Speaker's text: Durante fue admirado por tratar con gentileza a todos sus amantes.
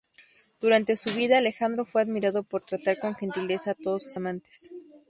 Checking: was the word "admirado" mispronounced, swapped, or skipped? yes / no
no